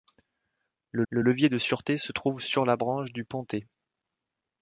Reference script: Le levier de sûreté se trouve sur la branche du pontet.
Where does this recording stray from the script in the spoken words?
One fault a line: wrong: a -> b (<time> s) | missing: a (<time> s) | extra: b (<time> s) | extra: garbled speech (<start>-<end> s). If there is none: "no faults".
extra: le (1.1 s)